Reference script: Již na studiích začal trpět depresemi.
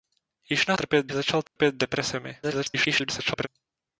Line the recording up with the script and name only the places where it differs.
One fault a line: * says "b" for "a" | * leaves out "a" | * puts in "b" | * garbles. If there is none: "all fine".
* says "trpět" for "studiích"
* garbles